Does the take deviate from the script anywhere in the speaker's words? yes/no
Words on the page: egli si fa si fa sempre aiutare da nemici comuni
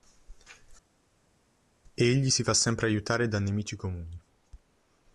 yes